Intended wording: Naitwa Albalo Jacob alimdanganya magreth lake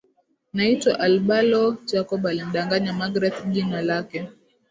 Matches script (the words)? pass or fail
fail